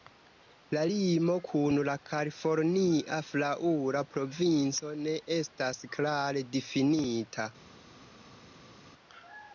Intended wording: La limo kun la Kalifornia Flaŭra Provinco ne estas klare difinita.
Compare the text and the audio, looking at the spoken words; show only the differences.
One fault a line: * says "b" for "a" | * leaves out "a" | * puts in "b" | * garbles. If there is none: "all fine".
all fine